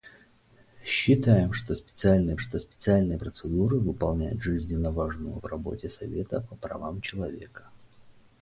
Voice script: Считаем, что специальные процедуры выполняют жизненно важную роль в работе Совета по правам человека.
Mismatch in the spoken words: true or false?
true